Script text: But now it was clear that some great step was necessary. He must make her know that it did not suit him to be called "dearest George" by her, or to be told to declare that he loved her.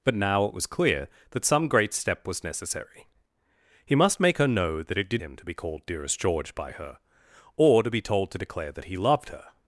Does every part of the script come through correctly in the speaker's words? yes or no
no